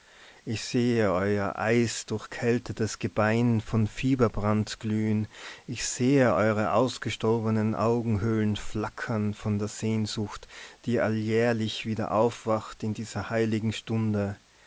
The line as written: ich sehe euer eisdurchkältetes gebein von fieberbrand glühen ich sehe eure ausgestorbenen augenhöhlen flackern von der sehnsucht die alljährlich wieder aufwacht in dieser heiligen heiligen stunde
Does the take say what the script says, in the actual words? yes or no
no